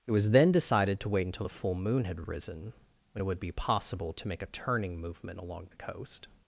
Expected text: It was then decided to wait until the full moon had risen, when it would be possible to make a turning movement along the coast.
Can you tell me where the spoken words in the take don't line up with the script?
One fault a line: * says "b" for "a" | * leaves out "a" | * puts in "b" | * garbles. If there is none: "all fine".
all fine